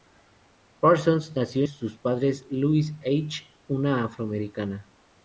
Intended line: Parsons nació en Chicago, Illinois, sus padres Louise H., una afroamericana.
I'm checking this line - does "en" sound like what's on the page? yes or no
no